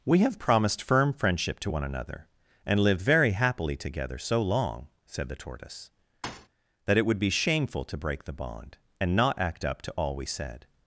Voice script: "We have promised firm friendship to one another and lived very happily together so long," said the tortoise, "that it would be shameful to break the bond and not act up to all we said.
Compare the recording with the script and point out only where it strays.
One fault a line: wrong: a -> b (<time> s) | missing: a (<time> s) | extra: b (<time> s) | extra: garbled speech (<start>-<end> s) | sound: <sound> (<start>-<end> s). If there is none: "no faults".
sound: thud (6.2-6.5 s)